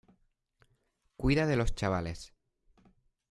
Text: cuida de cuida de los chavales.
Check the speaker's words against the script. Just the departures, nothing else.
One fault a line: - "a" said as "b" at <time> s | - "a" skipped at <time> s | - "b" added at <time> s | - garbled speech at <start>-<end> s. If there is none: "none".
- "cuida de" skipped at 1.6 s